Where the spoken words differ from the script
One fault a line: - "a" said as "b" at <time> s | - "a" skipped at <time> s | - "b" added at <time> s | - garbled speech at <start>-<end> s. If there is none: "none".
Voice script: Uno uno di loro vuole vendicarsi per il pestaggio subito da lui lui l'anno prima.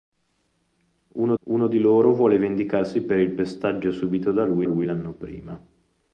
none